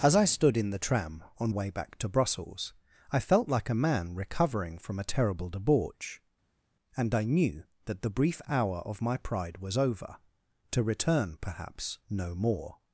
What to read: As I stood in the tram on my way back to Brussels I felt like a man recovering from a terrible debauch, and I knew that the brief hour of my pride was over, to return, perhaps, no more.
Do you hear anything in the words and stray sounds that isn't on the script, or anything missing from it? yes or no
yes